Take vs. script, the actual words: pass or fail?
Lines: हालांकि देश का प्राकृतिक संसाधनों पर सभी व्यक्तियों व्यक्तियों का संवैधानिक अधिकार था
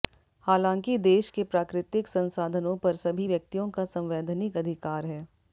fail